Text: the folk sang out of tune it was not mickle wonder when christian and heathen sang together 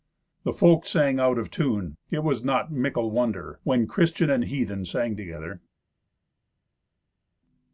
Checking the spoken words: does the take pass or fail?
pass